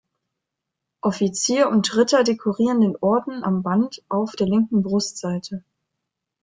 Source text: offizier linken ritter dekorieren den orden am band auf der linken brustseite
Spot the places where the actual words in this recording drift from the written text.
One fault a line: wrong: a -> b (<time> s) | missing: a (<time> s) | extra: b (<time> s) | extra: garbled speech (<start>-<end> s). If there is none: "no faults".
wrong: linken -> und (1.7 s)